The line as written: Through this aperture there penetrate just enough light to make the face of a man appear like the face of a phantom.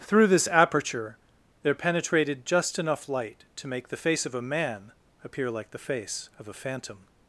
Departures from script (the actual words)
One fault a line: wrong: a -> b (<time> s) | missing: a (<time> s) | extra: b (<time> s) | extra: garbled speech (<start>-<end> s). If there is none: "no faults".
wrong: penetrate -> penetrated (1.7 s)